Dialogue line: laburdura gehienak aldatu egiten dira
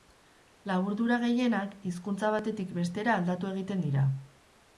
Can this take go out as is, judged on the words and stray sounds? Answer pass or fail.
fail